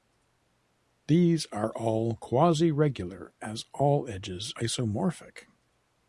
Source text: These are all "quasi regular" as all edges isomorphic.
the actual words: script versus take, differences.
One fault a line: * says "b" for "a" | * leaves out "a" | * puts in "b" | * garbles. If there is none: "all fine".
all fine